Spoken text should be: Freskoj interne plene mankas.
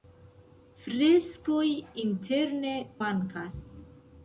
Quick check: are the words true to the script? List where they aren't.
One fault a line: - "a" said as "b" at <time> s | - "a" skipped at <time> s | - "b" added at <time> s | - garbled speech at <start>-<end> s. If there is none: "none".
- "plene" skipped at 2.7 s